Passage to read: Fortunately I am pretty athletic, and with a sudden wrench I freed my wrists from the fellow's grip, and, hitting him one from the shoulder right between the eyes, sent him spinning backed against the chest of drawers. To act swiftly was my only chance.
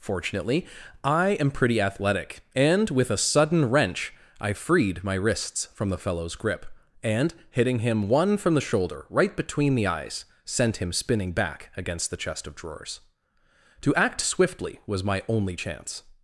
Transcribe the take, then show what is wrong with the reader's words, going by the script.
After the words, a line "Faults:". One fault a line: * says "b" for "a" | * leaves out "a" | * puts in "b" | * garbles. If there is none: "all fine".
Fortunately I am pretty athletic, and with a sudden wrench I freed my wrists from the fellow's grip, and, hitting him one from the shoulder right between the eyes, sent him spinning back against the chest of drawers. To act swiftly was my only chance.
Faults:
* says "back" for "backed"